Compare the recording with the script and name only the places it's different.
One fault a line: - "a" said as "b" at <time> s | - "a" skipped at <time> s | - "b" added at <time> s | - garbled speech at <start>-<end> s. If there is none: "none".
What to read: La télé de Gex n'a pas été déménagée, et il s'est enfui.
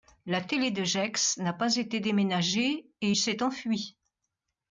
none